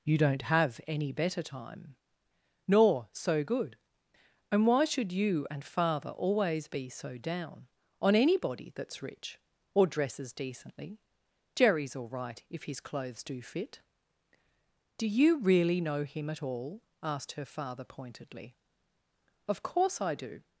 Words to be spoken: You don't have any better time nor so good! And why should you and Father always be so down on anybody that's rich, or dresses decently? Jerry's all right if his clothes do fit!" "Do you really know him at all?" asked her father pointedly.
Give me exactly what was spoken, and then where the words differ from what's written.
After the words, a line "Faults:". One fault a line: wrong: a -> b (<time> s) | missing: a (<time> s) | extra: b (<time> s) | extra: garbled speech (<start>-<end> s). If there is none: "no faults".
You don't have any better time nor so good! And why should you and Father always be so down on anybody that's rich, or dresses decently? Jerry's all right if his clothes do fit!" "Do you really know him at all?" asked her father pointedly. "Of course I do
Faults:
extra: Of course I do (19.5 s)